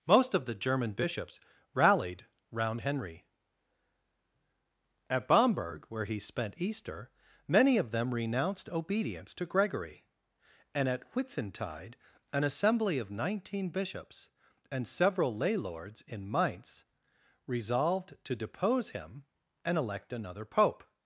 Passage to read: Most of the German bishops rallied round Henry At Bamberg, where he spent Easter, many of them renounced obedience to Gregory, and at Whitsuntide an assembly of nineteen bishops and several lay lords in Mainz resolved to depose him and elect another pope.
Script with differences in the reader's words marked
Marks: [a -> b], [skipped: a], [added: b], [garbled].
Most of the German bishops rallied round Henry At Bamberg, where he spent Easter, many of them renounced obedience to Gregory, and at Whitsuntide an assembly of nineteen bishops and several lay lords in Mainz resolved to depose him and elect another pope.